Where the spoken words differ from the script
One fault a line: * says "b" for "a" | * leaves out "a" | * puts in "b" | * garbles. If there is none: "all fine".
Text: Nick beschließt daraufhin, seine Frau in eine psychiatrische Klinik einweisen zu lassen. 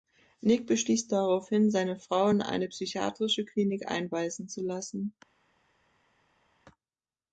all fine